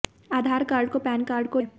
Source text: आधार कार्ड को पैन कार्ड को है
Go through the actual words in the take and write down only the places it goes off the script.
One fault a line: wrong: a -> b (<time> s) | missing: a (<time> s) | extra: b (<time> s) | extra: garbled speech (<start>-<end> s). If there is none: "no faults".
no faults